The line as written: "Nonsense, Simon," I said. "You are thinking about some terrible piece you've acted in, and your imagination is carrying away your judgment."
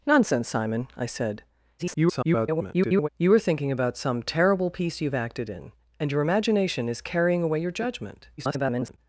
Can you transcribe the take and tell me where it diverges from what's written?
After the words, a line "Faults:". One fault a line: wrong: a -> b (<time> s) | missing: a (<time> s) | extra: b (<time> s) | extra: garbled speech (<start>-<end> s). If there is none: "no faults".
"Nonsense, Simon," I said. [garbled] "You are thinking about some terrible piece you've acted in, and your imagination is carrying away your judgment." [garbled]
Faults:
extra: garbled speech (1.8-3.1 s)
extra: garbled speech (8.4-9.0 s)